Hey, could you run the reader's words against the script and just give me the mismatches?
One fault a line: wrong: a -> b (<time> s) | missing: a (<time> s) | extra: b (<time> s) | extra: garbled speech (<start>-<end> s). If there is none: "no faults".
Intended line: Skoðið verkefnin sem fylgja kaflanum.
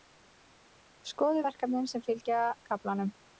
no faults